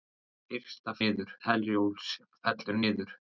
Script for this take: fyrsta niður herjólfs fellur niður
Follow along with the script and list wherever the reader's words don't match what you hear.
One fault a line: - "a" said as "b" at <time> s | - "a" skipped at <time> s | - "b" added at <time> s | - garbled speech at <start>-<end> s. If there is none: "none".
none